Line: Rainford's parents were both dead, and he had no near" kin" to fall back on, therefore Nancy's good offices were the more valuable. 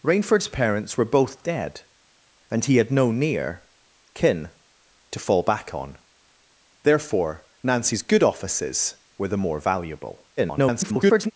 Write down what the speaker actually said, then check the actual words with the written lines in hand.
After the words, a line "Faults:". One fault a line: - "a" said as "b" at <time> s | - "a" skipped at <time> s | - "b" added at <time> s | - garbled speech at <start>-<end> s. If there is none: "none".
Rainford's parents were both dead, and he had no near" kin" to fall back on, therefore Nancy's good offices were the more valuable. [garbled]
Faults:
- garbled speech at 10.4-11.3 s